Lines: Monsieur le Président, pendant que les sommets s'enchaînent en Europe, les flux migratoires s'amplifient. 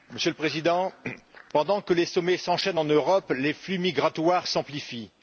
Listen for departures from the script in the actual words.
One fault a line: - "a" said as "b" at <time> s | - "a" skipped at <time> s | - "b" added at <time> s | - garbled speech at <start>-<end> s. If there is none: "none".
none